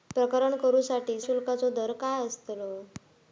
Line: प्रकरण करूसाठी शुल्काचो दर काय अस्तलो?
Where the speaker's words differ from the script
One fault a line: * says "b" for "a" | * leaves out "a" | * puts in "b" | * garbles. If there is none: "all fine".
all fine